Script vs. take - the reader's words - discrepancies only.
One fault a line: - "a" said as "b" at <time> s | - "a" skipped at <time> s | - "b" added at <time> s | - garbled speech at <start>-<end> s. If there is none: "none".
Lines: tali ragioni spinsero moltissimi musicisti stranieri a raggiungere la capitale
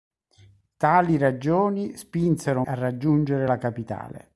- "moltissimi musicisti stranieri" skipped at 2.6 s